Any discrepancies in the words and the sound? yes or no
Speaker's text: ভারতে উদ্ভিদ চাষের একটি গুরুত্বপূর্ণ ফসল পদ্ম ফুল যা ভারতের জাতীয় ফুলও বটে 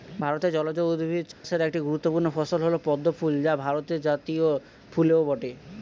yes